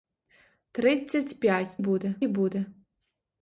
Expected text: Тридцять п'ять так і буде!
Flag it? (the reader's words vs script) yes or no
yes